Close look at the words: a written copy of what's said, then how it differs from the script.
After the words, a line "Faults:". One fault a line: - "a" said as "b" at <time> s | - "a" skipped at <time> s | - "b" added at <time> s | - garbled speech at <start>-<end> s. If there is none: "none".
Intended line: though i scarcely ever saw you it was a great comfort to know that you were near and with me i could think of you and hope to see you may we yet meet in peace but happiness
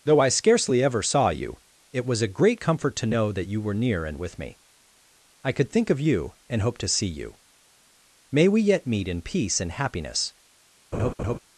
though i scarcely ever saw you it was a great comfort to know that you were near and with me i could think of you and hope to see you may we yet meet in peace and happiness
Faults:
- "but" said as "and" at 9.6 s